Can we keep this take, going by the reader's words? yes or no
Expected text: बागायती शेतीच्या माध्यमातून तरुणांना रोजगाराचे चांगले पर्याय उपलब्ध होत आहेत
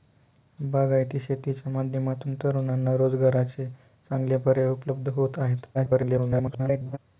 no